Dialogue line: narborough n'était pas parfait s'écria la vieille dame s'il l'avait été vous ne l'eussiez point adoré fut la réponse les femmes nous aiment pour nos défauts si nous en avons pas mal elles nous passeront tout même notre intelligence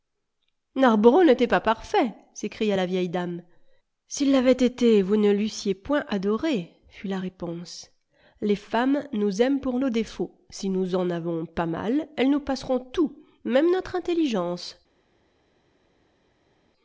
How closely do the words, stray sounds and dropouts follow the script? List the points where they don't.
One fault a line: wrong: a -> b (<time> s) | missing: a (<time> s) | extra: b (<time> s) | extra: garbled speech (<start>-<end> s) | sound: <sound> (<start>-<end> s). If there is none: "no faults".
no faults